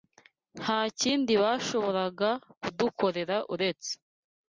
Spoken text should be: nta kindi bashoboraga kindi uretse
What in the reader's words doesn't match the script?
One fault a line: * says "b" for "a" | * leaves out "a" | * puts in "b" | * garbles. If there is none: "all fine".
* says "kudukorera" for "kindi"